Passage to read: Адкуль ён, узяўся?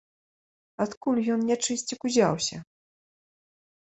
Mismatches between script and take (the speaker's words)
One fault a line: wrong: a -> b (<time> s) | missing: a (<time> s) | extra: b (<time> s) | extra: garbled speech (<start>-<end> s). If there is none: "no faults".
extra: нячысцік (1.5 s)